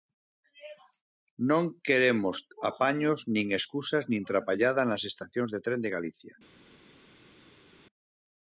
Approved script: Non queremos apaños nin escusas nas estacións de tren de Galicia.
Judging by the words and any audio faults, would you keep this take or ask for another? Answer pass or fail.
fail